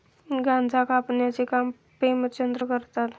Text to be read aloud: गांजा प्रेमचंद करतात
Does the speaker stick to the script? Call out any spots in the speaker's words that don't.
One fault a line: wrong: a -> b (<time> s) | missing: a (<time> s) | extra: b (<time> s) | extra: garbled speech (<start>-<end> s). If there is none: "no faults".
extra: कापण्याचे काम (0.8 s)